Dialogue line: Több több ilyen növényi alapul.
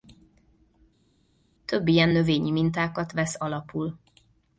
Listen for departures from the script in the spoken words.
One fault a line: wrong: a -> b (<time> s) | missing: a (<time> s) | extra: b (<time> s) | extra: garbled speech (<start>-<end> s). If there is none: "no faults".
missing: több (1.9 s)
extra: mintákat vesz (2.5 s)